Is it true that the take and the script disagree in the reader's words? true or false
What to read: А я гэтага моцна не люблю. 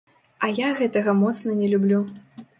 false